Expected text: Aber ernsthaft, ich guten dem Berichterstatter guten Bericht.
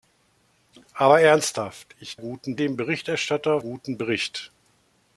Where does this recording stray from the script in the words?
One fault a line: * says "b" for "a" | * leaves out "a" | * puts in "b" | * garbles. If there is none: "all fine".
all fine